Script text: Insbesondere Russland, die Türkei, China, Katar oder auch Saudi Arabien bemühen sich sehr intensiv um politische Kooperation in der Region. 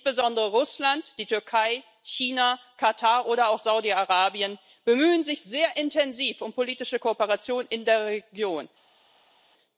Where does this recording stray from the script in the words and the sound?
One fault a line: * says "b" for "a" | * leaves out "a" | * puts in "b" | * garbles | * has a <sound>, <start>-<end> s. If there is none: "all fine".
all fine